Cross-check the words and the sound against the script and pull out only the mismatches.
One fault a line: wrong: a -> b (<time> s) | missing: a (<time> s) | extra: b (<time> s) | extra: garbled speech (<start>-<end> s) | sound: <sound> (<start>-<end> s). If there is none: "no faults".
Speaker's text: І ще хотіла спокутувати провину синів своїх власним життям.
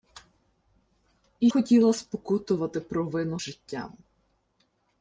missing: ще (1.5 s)
missing: синів своїх власним (3.4 s)